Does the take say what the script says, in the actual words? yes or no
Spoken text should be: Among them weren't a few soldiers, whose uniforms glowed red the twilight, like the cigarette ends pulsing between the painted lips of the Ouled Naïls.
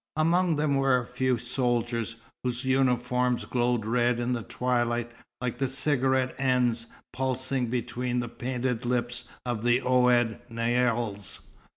no